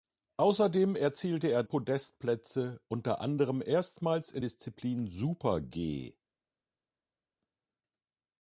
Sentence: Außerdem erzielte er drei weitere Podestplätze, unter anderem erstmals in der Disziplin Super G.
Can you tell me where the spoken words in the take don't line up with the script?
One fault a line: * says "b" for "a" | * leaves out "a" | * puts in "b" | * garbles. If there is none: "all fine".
* leaves out "drei weitere"
* leaves out "der"